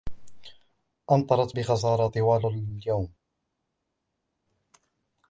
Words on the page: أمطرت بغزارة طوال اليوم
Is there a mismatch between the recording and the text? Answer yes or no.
no